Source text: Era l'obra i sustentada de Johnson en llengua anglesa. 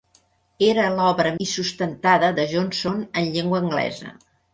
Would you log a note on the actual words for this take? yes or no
no